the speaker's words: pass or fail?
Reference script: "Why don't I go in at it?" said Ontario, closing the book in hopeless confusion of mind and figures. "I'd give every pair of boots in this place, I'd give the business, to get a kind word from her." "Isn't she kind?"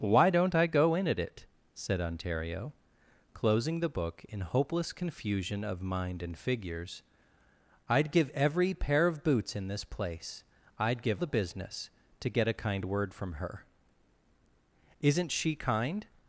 pass